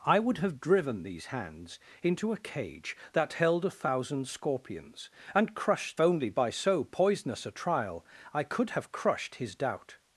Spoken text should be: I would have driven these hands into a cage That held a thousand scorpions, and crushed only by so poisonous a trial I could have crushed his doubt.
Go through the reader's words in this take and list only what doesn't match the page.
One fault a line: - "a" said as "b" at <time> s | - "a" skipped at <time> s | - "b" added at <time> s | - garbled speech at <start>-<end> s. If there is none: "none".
none